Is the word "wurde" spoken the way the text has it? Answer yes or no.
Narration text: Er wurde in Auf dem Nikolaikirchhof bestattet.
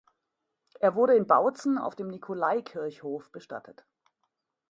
yes